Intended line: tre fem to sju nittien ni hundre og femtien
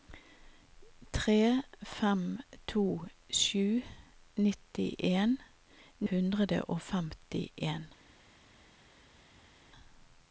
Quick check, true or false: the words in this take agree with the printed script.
false